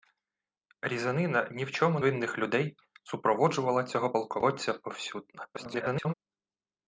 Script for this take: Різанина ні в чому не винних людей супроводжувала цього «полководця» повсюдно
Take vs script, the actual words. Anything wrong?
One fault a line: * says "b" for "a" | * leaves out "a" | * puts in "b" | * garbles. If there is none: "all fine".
* leaves out "не"
* garbles